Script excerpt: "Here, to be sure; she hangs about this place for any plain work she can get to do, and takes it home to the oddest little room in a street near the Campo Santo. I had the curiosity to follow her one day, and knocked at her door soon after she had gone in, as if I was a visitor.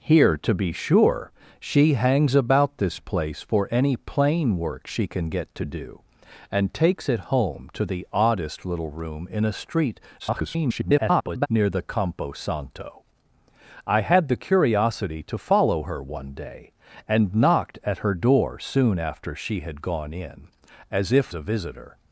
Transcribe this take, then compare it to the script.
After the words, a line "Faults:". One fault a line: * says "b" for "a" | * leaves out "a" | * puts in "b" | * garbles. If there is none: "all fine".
"Here, to be sure; she hangs about this place for any plain work she can get to do, and takes it home to the oddest little room in a street [garbled] near the Campo Santo. I had the curiosity to follow her one day, and knocked at her door soon after she had gone in, as if a visitor.
Faults:
* garbles
* leaves out "I was"